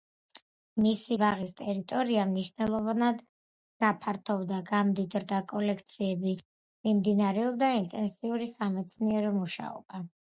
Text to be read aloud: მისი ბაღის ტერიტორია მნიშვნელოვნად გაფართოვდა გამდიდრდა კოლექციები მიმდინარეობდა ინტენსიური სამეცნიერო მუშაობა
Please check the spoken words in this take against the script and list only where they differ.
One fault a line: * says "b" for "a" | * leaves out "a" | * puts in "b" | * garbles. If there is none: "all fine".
all fine